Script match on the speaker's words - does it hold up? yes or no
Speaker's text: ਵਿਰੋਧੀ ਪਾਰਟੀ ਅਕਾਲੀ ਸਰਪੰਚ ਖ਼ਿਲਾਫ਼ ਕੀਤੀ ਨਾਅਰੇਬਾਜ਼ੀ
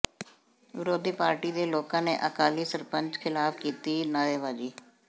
no